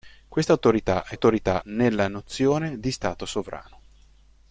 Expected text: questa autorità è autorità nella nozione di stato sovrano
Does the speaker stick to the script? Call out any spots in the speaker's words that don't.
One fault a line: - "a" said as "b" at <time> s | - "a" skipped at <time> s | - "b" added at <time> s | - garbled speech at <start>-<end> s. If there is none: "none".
none